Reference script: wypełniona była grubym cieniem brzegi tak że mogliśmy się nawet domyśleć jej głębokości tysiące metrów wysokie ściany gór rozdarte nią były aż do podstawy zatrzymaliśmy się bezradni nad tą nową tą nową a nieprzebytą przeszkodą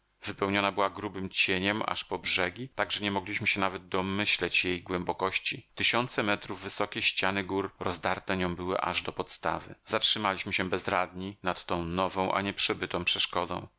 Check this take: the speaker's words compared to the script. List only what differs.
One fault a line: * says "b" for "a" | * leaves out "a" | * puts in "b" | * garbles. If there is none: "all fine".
* puts in "aż po"
* puts in "nie"
* leaves out "tą nową"